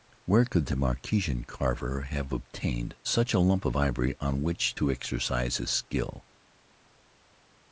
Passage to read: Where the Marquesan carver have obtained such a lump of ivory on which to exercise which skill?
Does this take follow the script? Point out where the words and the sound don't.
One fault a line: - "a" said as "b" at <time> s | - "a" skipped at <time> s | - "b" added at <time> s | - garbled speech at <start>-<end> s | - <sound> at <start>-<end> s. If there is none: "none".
- "could" added at 0.5 s
- "which" said as "his" at 5.6 s